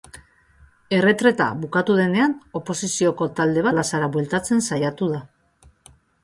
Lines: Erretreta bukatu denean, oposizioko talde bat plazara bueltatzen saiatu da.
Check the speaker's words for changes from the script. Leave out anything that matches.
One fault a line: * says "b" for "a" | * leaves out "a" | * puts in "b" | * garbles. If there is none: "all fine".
* leaves out "bat"